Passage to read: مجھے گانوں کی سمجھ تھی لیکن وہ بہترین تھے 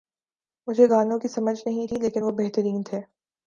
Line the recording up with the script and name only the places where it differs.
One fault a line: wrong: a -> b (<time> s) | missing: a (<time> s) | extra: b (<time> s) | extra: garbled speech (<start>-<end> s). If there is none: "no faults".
extra: نہیں (1.6 s)